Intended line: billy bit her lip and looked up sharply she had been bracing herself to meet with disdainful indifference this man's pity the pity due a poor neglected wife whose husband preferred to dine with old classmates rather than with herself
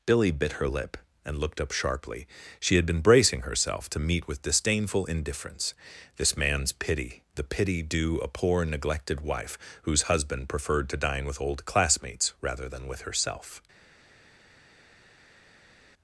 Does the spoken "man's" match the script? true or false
true